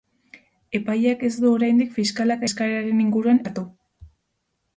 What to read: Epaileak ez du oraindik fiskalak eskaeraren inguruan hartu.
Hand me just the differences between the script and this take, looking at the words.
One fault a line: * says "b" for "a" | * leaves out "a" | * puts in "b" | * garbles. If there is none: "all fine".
all fine